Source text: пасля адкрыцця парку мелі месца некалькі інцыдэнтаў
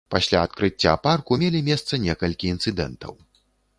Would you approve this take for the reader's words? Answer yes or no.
yes